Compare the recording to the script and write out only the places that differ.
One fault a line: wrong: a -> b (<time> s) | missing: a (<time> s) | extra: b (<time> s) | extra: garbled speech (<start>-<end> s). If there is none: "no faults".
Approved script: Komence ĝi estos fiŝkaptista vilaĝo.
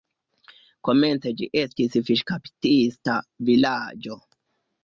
wrong: estos -> estis (1.6 s)